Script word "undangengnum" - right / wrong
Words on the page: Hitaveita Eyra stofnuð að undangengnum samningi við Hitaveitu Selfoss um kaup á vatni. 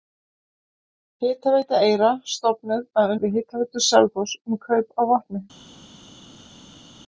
wrong